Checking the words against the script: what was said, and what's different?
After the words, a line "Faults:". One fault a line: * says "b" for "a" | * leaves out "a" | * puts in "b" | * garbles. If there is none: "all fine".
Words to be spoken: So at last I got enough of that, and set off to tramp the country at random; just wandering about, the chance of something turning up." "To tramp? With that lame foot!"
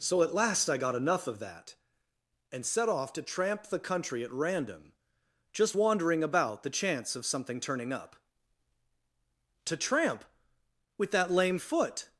So at last I got enough of that, and set off to tramp the country at random; just wandering about, the chance of something turning up." "To tramp? With that lame foot!"
Faults:
all fine